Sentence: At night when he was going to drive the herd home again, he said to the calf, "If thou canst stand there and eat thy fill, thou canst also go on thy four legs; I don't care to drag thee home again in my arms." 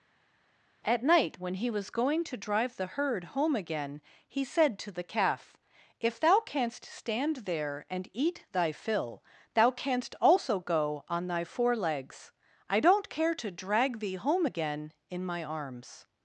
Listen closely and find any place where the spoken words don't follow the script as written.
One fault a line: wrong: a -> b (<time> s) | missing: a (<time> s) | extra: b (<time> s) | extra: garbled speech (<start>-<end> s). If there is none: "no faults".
no faults